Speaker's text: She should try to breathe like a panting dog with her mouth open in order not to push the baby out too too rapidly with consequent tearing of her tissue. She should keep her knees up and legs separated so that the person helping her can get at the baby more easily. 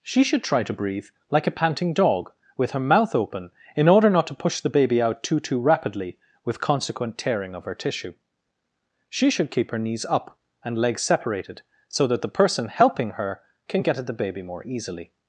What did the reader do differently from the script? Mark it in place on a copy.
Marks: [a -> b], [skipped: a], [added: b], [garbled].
She should try to breathe like a panting dog with her mouth open in order not to push the baby out too too rapidly with consequent tearing of her tissue. She should keep her knees up and legs separated so that the person helping her can get at the baby more easily.